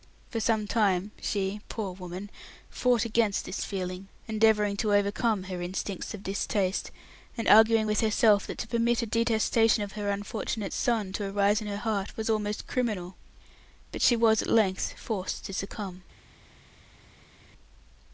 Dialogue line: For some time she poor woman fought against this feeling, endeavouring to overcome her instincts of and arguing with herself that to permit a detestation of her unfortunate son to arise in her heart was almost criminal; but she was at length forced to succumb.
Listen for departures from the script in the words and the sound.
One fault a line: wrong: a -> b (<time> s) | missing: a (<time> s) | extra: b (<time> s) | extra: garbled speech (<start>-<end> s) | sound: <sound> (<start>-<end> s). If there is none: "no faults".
extra: distaste (6.2 s)